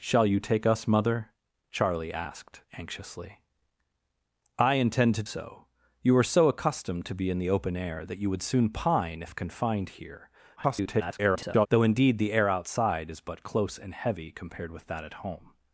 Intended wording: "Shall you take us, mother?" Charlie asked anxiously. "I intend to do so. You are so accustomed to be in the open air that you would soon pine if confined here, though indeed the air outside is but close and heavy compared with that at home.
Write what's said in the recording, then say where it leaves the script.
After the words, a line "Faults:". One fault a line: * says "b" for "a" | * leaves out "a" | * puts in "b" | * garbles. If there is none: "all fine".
"Shall you take us, mother?" Charlie asked anxiously. "I intend to so. You are so accustomed to be in the open air that you would soon pine if confined here, [garbled] though indeed the air outside is but close and heavy compared with that at home.
Faults:
* leaves out "do"
* garbles